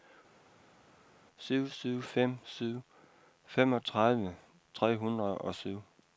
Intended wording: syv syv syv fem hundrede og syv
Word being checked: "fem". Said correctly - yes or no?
no